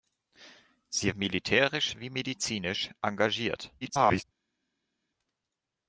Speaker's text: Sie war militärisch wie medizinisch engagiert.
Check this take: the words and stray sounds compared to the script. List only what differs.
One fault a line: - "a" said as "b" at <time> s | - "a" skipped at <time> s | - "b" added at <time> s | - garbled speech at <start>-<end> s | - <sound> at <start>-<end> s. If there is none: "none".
- "war" skipped at 1.1 s
- garbled speech at 3.8-4.2 s